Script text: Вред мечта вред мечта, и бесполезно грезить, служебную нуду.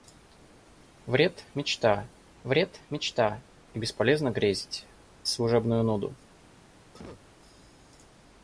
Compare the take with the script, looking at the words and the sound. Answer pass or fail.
fail